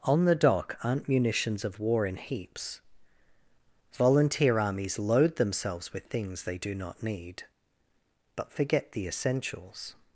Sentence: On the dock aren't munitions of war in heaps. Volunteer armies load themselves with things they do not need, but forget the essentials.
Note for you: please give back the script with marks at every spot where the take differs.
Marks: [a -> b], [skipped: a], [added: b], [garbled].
On the dock aren't munitions of war in heaps. Volunteer armies load themselves with things they do not need, but forget the essentials.